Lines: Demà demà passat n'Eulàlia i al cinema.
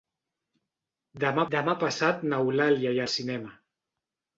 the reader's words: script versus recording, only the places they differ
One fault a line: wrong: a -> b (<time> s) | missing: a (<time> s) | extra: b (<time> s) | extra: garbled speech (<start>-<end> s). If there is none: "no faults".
no faults